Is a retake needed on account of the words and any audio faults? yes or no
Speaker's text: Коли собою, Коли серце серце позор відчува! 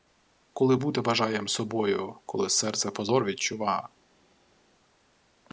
yes